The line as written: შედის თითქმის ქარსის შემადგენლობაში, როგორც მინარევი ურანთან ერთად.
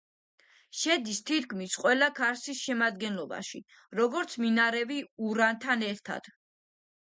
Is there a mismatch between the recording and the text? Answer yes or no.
yes